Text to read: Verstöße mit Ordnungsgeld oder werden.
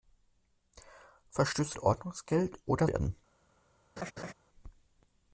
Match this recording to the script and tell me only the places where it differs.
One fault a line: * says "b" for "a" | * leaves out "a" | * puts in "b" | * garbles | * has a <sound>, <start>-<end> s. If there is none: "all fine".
* has a laugh, 4.0-4.3 s